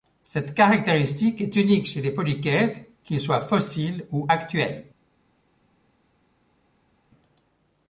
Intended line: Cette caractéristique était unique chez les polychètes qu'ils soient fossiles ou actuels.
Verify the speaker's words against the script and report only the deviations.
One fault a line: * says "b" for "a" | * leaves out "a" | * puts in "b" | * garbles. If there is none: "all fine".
* says "est" for "était"